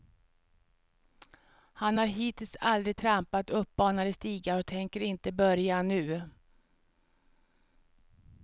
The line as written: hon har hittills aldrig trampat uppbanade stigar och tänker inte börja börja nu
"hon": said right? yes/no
no